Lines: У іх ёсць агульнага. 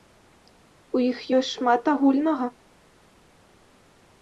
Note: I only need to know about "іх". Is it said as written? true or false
true